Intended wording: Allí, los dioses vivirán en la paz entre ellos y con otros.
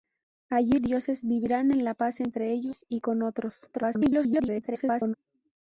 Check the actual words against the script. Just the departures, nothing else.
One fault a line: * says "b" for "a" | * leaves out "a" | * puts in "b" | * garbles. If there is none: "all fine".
* leaves out "los"
* garbles